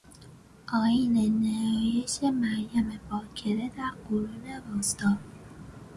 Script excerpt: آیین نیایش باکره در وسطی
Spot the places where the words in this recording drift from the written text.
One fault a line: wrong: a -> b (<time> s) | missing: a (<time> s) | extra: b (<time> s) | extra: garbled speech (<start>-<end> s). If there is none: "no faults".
extra: مریم (2.2 s)
extra: قرون (4.1 s)